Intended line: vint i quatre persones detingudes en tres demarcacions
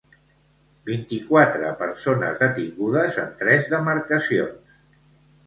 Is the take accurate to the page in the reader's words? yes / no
yes